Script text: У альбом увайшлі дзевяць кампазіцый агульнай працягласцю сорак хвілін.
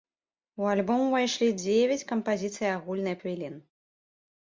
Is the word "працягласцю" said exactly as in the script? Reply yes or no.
no